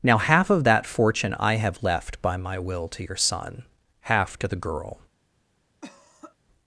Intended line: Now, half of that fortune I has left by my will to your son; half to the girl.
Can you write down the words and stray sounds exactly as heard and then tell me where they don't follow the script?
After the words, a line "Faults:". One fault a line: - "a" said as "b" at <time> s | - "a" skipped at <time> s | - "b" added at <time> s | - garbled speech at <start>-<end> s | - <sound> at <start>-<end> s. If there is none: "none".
Now, half of that fortune I have left by my will to your son; half to the girl.
Faults:
- "has" said as "have" at 1.6 s
- cough at 5.8-6.4 s